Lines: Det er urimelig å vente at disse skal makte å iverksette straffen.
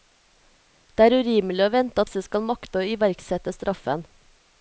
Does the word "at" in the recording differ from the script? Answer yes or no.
yes